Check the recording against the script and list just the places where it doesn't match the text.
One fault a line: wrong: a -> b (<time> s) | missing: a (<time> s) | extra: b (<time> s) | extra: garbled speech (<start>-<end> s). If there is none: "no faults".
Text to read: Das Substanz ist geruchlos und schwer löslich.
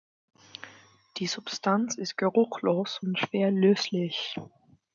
wrong: Das -> Die (1.2 s)